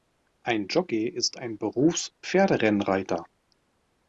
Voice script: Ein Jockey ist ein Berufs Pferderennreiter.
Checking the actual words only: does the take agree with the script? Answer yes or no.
yes